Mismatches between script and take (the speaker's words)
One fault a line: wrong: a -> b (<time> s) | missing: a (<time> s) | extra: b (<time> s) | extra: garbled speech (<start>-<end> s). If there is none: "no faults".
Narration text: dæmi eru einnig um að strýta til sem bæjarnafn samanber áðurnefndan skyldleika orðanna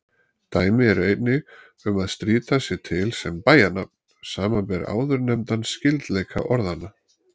extra: sé (2.7 s)